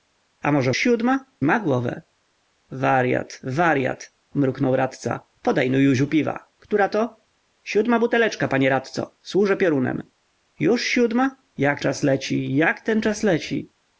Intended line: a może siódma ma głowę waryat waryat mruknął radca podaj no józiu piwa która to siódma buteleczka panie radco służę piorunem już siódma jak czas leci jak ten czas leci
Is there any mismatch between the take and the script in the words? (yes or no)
no